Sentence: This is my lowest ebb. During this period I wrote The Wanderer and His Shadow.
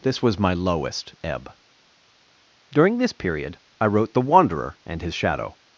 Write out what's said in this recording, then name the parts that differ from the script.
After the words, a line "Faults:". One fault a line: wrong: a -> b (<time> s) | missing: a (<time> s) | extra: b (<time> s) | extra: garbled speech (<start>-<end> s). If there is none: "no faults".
This was my lowest ebb. During this period I wrote The Wanderer and His Shadow.
Faults:
wrong: is -> was (0.2 s)